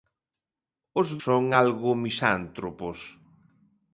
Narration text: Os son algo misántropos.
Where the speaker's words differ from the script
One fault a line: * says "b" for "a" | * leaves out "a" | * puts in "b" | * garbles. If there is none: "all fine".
all fine